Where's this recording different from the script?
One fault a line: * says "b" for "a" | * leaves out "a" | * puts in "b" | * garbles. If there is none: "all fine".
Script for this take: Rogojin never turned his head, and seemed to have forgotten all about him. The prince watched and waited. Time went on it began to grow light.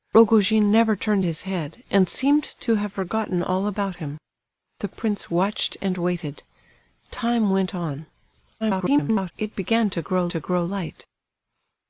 * garbles
* puts in "to grow"